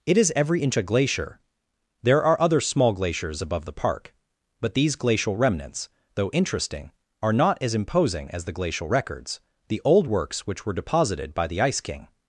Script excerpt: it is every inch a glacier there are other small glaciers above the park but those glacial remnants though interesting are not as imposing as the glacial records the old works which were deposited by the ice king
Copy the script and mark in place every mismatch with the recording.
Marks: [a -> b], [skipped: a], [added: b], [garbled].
it is every inch a glacier there are other small glaciers above the park but [those -> these] glacial remnants though interesting are not as imposing as the glacial records the old works which were deposited by the ice king